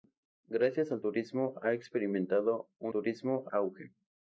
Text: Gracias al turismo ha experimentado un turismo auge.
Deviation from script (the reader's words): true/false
false